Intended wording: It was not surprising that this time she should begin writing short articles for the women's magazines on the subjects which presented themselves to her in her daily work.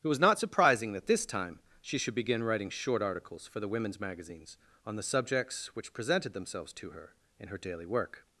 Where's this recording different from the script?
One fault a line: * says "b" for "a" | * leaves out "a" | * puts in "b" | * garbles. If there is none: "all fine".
all fine